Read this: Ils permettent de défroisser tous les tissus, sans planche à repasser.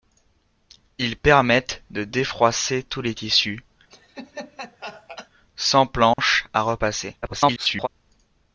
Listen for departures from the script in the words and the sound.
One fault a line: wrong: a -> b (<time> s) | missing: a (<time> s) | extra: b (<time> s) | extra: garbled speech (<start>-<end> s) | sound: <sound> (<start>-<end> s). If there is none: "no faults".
sound: laugh (3.9-5.3 s)
sound: dropout (6.1-6.2 s)
extra: garbled speech (7.2-7.9 s)